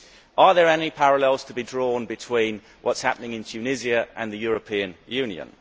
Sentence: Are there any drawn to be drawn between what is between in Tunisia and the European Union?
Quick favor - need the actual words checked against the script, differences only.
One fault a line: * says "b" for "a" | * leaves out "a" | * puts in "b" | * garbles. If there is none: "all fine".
* says "parallels" for "drawn"
* says "happening" for "between"